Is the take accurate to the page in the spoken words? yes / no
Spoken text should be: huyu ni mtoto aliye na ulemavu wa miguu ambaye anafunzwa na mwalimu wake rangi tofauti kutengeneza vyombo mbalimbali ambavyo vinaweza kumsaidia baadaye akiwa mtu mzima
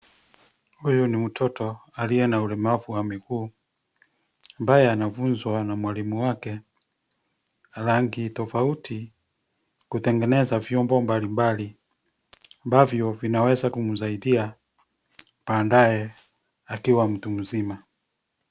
yes